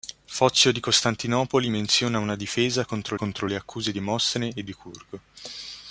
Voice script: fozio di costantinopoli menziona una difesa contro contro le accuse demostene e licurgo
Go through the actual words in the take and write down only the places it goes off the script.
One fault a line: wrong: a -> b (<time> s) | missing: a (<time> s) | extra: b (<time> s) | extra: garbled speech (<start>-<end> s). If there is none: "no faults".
no faults